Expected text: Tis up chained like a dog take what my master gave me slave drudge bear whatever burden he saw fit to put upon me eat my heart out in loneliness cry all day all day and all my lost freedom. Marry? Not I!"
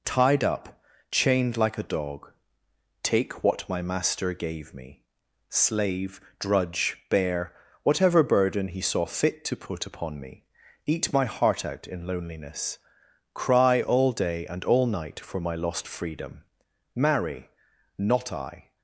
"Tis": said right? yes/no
no